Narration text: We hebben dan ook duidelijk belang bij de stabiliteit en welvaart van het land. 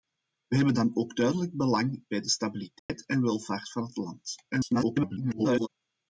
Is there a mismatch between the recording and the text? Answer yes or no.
yes